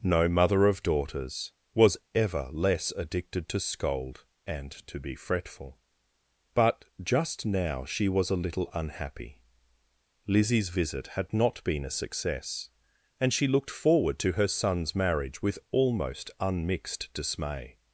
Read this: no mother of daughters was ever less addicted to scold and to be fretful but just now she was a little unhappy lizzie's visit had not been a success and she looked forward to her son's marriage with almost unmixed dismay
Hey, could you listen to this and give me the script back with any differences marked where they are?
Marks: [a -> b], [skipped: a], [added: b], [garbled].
no mother of daughters was ever less addicted to scold and to be fretful but just now she was a little unhappy lizzie's visit had not been a success and she looked forward to her son's marriage with almost unmixed dismay